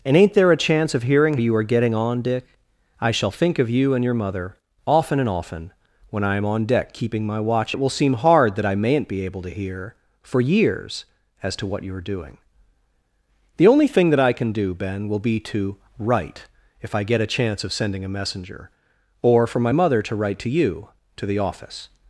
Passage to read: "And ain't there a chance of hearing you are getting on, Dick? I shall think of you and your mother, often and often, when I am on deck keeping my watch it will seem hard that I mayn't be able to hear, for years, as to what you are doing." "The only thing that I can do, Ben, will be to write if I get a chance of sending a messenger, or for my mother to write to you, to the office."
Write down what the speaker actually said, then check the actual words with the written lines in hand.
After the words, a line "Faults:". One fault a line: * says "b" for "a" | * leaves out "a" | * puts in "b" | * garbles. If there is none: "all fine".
"And ain't there a chance of hearing you are getting on, Dick? I shall think of you and your mother, often and often, when I am on deck keeping my watch it will seem hard that I mayn't be able to hear, for years, as to what you are doing." "The only thing that I can do, Ben, will be to write if I get a chance of sending a messenger, or for my mother to write to you, to the office."
Faults:
all fine